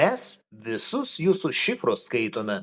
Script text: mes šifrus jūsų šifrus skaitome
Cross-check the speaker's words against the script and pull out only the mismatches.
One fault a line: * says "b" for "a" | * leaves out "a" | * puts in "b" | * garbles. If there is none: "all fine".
* says "visus" for "šifrus"